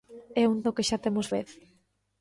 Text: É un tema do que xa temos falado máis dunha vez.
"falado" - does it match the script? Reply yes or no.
no